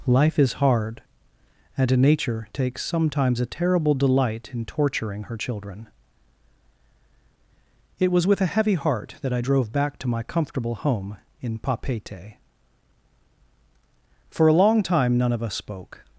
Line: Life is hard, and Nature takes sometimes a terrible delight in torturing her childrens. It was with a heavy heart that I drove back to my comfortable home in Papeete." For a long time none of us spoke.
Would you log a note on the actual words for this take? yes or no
yes